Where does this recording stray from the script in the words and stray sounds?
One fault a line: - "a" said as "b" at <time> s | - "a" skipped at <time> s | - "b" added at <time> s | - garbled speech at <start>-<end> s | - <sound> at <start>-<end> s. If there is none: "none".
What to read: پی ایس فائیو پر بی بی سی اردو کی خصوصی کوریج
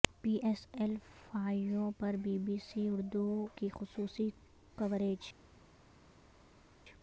- "ایل" added at 0.7 s